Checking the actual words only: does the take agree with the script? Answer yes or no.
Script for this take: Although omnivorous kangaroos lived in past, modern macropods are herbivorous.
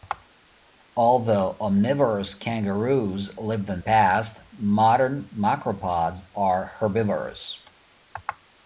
yes